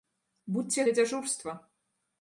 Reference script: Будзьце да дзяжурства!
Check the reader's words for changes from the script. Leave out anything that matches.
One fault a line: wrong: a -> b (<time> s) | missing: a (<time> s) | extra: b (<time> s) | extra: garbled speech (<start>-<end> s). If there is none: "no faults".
no faults